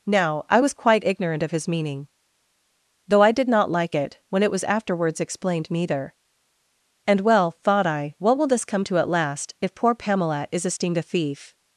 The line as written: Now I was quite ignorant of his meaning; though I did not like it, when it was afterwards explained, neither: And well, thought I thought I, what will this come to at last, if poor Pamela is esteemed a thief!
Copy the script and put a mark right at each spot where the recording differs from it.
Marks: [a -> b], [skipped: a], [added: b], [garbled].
Now I was quite ignorant of his meaning; though I did not like it, when it was afterwards explained, neither: And well, thought I [skipped: thought I,] what will this come to at last, if poor Pamela is esteemed a thief!